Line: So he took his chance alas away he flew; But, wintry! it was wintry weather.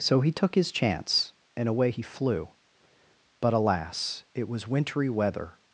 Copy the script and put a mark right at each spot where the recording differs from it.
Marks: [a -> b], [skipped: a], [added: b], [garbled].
So he took his chance [alas -> and] away he flew; But, [wintry! -> alas] it was wintry weather.